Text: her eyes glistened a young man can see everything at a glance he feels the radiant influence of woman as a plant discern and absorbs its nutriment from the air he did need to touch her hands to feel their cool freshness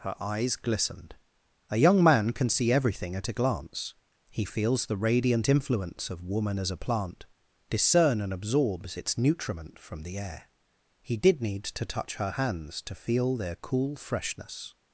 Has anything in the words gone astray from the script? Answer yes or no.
no